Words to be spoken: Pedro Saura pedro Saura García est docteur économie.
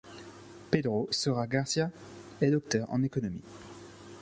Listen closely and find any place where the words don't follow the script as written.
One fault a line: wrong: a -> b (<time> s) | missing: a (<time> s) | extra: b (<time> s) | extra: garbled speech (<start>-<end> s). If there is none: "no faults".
missing: pedro Saura (1.5 s)
extra: en (2.9 s)